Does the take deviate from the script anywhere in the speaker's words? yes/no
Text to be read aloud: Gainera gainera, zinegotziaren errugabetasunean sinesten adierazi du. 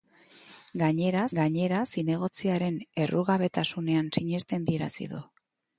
no